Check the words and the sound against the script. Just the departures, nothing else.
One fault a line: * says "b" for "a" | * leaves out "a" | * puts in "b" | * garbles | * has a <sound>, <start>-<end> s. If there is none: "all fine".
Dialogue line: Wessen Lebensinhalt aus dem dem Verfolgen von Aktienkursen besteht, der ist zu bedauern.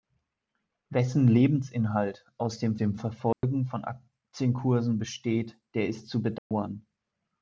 * has a dropout, 3.3-3.4 s
* has a dropout, 6.4-6.5 s